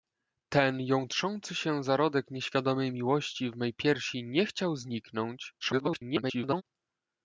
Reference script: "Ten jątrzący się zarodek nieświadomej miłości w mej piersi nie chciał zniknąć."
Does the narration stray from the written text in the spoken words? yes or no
yes